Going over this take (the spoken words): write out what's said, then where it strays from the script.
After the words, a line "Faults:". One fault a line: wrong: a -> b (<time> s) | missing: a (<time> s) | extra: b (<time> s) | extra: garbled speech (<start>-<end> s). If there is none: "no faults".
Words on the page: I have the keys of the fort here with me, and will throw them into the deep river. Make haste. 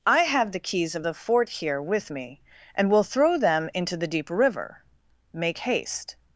I have the keys of the fort here with me, and will throw them into the deep river. Make haste.
Faults:
no faults